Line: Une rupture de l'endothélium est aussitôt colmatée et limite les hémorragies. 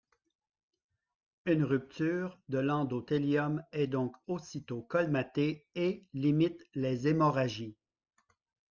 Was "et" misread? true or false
false